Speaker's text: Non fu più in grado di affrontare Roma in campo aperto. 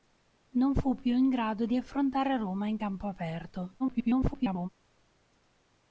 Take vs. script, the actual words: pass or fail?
fail